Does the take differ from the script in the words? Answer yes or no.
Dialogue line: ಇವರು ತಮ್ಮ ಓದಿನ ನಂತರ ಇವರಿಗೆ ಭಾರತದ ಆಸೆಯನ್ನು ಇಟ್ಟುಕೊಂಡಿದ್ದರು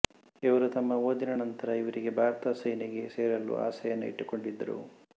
yes